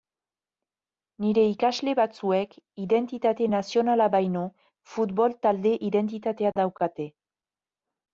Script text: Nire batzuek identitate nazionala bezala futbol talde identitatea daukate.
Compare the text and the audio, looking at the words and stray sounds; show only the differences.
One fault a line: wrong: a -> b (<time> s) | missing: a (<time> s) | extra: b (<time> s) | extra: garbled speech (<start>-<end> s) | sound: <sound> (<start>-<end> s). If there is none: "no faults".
extra: ikasle (1.5 s)
wrong: bezala -> baino (4.1 s)